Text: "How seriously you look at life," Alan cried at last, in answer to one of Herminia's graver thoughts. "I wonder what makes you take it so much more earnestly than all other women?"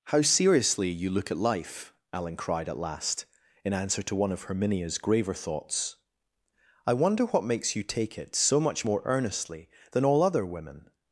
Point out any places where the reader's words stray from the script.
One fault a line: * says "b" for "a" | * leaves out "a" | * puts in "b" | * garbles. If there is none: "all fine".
all fine